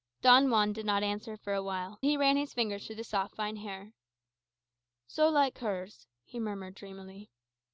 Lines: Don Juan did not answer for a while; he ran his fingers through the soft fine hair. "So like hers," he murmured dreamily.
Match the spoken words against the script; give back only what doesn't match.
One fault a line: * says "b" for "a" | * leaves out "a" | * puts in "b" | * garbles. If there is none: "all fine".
all fine